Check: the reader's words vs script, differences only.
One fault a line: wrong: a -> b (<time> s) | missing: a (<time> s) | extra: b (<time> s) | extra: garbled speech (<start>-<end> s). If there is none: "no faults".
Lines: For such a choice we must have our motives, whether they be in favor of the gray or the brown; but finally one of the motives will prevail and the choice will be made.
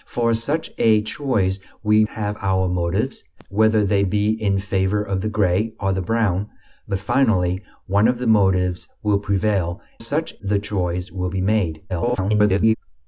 missing: must (2.0 s)
wrong: and -> such (10.0 s)
extra: garbled speech (11.9-12.8 s)